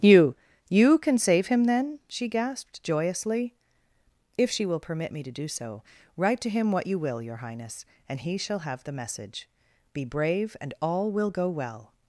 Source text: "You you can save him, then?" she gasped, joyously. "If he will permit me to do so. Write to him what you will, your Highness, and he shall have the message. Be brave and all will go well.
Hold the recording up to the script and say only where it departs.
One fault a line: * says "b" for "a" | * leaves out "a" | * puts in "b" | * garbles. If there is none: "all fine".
* says "she" for "he"